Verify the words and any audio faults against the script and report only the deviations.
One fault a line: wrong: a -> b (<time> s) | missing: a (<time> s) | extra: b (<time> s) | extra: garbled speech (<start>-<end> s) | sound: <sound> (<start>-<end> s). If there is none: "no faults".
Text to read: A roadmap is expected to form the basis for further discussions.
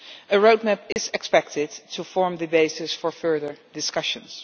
sound: dropout (0.9-1.0 s)